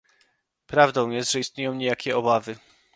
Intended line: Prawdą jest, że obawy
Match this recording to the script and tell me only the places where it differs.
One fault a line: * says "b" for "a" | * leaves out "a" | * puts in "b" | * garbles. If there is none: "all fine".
* puts in "istnieją niejakie"